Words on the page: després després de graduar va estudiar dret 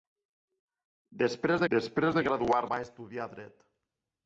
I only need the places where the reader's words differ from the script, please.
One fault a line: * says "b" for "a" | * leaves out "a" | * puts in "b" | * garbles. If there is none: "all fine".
all fine